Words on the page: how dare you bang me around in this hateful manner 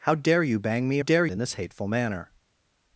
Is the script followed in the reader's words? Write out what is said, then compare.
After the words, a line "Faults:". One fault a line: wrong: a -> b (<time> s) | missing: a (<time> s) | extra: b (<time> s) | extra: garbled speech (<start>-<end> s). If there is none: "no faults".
how dare you bang me dare in this hateful manner
Faults:
wrong: around -> dare (1.0 s)